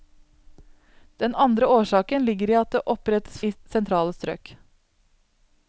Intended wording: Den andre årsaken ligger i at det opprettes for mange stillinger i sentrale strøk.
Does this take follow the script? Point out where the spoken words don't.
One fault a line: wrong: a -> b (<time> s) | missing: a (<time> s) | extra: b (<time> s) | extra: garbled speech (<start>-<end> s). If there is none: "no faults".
missing: for mange stillinger (3.4 s)